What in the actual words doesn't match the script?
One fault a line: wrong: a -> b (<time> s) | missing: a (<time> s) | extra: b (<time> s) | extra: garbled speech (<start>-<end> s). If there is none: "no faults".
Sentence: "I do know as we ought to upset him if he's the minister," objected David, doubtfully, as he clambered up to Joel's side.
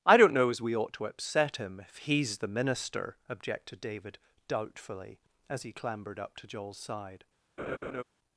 wrong: do -> don't (0.2 s)